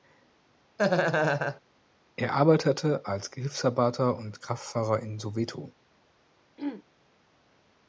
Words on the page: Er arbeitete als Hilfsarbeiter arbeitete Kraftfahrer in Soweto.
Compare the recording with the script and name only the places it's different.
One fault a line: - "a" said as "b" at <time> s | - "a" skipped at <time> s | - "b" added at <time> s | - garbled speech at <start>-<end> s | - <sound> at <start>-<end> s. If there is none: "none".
- laugh at 0.8-1.6 s
- "arbeitete" said as "und" at 4.2 s
- throat clearing at 6.6-6.8 s